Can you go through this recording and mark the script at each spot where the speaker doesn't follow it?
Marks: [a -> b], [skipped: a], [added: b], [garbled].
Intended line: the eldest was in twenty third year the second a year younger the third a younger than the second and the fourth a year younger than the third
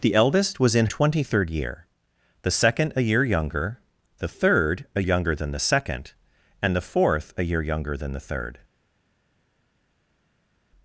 the eldest was in twenty third year the second a year younger the third a younger than the second and the fourth a year younger than the third